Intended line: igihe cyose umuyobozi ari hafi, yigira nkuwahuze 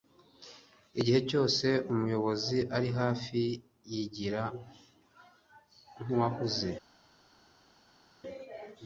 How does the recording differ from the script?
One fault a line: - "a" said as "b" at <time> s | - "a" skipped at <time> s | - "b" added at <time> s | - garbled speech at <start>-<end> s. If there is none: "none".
none